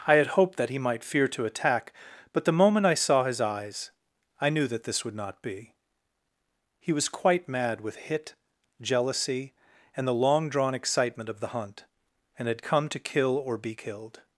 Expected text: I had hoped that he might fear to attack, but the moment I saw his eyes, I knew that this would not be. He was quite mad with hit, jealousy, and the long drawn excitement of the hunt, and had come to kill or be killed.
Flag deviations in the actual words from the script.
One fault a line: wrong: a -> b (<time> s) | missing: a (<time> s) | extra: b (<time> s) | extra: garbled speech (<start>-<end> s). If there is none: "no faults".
no faults